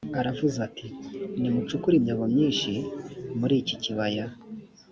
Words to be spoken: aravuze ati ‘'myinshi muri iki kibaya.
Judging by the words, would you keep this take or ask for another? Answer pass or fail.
fail